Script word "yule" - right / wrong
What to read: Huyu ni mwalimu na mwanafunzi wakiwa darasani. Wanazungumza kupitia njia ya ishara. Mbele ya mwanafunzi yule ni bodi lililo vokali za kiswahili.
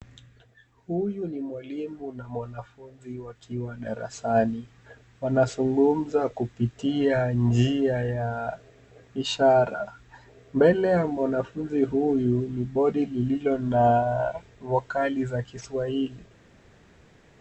wrong